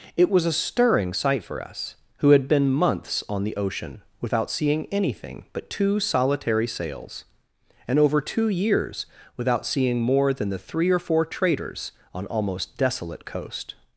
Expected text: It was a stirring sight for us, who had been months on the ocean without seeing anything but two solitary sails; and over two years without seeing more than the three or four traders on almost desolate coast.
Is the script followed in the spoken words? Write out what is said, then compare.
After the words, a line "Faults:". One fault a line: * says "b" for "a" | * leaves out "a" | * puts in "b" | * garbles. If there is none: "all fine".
It was a stirring sight for us, who had been months on the ocean without seeing anything but two solitary sails; and over two years without seeing more than the three or four traders on almost desolate coast.
Faults:
all fine